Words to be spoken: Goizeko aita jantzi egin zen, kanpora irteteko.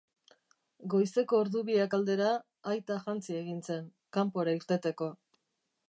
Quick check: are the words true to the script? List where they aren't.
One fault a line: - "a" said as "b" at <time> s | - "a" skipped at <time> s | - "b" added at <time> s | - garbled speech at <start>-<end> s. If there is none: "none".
- "ordu biak aldera" added at 1.4 s